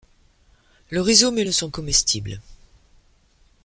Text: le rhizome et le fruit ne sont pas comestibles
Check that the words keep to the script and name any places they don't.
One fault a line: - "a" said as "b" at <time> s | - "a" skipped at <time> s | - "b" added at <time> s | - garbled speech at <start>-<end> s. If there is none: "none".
- "le fruit" skipped at 1.4 s
- "pas" skipped at 1.7 s